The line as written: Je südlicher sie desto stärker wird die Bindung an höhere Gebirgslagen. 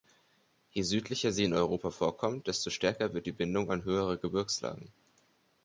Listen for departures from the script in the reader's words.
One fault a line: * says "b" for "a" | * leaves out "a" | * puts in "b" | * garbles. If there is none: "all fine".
* puts in "in Europa vorkommt"